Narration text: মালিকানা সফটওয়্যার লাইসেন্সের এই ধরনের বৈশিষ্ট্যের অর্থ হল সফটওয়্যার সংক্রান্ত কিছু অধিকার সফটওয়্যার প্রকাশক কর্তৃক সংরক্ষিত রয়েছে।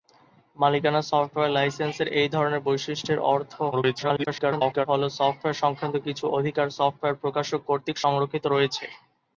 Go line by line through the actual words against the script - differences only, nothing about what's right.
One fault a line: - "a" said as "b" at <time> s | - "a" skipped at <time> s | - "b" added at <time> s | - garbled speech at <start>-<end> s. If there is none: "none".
- garbled speech at 3.7-4.9 s